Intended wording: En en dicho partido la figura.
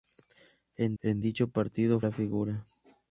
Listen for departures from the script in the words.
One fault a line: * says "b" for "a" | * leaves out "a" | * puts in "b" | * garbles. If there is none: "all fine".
all fine